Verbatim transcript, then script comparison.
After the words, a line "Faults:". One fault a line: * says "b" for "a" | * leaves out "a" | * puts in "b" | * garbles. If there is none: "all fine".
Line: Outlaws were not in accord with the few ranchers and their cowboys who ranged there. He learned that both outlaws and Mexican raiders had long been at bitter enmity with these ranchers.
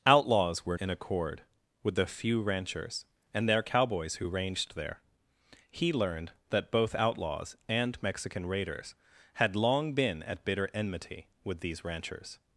Outlaws were in accord with the few ranchers and their cowboys who ranged there. He learned that both outlaws and Mexican raiders had long been at bitter enmity with these ranchers.
Faults:
* leaves out "not"